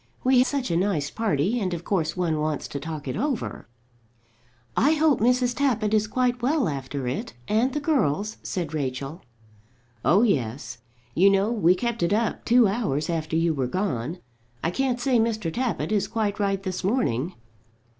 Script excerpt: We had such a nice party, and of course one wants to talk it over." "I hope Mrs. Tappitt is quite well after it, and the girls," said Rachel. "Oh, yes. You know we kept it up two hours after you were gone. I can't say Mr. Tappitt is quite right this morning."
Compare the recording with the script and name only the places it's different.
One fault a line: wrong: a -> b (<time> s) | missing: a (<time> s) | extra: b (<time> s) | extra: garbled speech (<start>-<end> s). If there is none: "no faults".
missing: had (0.4 s)